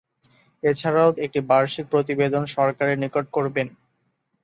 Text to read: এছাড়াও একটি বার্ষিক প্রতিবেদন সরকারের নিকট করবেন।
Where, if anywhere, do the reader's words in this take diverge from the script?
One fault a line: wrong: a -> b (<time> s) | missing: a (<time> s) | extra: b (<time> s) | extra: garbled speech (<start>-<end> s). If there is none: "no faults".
no faults